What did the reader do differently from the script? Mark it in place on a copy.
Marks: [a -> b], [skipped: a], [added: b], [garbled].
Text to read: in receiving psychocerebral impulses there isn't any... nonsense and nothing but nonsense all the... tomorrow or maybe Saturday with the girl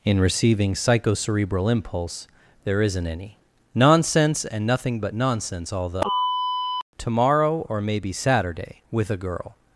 in receiving psychocerebral [impulses -> impulse] there isn't any... nonsense and nothing but nonsense all the... tomorrow or maybe Saturday with [the -> a] girl